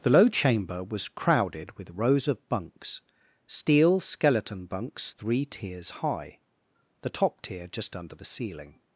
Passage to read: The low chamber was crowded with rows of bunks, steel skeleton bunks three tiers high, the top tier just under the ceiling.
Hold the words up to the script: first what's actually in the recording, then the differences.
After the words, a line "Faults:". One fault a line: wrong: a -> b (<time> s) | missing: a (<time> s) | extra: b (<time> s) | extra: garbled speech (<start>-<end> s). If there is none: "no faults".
The low chamber was crowded with rows of bunks, steel skeleton bunks three tiers high, the top tier just under the ceiling.
Faults:
no faults